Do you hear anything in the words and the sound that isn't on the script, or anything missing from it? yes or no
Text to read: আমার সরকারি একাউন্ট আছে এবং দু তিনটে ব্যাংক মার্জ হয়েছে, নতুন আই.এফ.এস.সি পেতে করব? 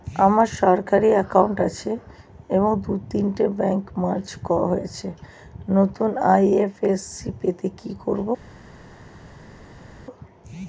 yes